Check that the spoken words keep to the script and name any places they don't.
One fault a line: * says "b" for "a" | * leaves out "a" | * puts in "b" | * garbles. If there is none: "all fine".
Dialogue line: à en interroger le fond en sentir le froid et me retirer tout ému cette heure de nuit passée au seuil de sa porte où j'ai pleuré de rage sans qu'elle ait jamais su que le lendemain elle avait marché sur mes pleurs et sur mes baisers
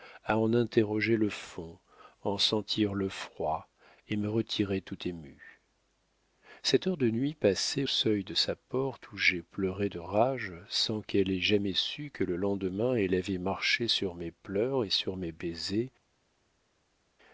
* leaves out "au"